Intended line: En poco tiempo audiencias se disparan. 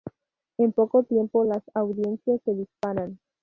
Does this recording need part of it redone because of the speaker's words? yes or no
yes